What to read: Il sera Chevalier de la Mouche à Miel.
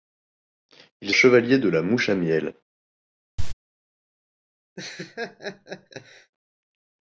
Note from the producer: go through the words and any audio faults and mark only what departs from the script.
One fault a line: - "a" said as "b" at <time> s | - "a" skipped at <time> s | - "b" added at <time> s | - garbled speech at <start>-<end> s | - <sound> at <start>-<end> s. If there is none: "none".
- "sera" skipped at 1.1 s
- cough at 3.4-3.5 s
- laugh at 4.8-6.3 s